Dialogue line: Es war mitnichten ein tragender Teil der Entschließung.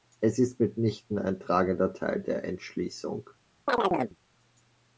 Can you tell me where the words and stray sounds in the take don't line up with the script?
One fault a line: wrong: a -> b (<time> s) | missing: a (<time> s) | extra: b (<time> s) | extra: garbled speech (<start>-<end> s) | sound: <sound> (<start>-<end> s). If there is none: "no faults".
wrong: war -> ist (0.4 s)
sound: chirp (3.7-4.2 s)